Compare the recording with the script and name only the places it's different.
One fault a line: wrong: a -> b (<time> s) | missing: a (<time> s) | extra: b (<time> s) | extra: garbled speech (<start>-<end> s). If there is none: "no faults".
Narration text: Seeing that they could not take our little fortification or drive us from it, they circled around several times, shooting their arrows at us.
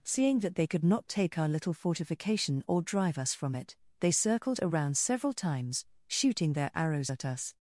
no faults